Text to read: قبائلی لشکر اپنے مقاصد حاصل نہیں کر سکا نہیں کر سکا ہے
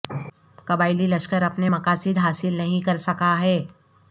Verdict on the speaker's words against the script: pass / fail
fail